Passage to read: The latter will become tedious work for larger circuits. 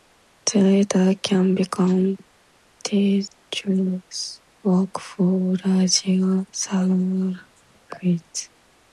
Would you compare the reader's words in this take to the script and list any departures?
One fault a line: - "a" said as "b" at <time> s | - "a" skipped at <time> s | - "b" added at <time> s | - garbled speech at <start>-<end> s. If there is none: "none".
- "will" said as "can" at 1.2 s